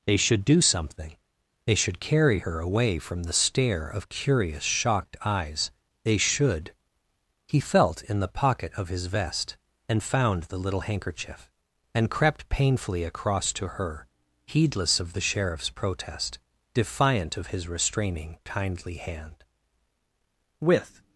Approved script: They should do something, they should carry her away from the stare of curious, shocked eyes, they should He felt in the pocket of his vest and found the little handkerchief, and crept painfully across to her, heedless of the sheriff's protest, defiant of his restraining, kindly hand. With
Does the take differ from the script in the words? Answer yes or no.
no